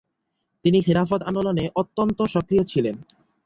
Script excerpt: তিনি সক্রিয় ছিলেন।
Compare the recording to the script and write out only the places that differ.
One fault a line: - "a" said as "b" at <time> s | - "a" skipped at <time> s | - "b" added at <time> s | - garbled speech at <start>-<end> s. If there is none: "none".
- "খিলাফত আন্দোলনে অত্যন্ত" added at 0.8 s